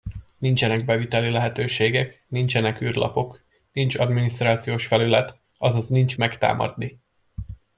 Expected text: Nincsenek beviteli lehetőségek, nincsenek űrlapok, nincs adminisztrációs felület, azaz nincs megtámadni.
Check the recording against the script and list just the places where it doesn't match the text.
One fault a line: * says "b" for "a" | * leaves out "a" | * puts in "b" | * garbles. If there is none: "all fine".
all fine